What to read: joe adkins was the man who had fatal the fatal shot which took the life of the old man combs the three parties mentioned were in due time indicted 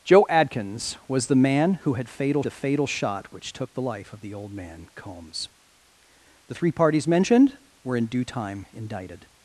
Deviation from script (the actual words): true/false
false